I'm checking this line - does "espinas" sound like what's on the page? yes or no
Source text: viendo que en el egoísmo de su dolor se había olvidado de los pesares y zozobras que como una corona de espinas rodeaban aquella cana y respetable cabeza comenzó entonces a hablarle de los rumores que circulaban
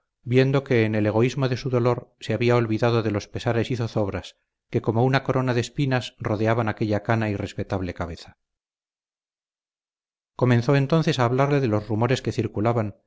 yes